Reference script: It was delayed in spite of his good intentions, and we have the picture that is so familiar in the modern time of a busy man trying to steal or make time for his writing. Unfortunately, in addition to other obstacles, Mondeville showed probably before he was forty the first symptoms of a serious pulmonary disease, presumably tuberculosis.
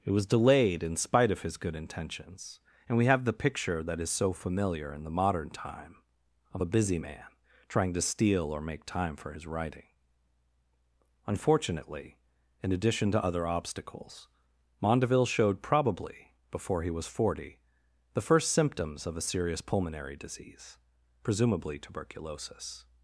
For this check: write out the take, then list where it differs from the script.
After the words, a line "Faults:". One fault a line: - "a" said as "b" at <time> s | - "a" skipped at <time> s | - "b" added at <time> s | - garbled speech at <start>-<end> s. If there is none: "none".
It was delayed in spite of his good intentions, and we have the picture that is so familiar in the modern time of a busy man trying to steal or make time for his writing. Unfortunately, in addition to other obstacles, Mondeville showed probably before he was forty the first symptoms of a serious pulmonary disease, presumably tuberculosis.
Faults:
none